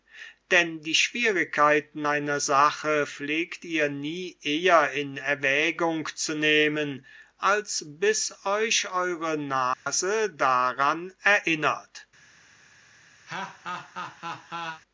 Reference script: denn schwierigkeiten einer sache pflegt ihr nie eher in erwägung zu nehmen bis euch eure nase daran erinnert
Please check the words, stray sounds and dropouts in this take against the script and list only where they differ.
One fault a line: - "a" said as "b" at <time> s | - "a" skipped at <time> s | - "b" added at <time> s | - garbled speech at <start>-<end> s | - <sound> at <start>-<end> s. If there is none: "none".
- "die" added at 0.8 s
- "als" added at 7.4 s
- dropout at 9.7-9.9 s
- laugh at 13.3-14.8 s